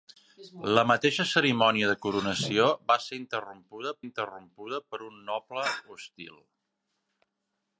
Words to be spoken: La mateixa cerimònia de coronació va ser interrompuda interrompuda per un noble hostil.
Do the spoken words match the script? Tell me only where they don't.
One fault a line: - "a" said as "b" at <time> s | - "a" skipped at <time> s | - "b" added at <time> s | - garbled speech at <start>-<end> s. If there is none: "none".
none